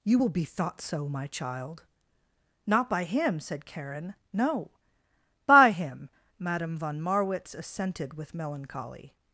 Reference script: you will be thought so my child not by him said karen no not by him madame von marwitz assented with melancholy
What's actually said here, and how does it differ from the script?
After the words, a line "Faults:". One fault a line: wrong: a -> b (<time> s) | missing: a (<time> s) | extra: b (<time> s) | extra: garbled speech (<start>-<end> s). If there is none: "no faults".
you will be thought so my child not by him said karen no by him madame von marwitz assented with melancholy
Faults:
missing: not (4.7 s)